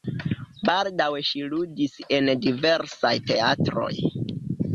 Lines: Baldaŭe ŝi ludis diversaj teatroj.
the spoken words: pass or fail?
fail